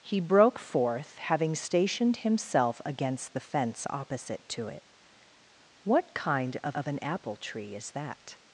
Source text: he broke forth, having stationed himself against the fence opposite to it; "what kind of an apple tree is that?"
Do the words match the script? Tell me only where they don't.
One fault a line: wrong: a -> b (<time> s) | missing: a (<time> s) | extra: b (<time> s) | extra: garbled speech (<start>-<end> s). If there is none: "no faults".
extra: of (6.7 s)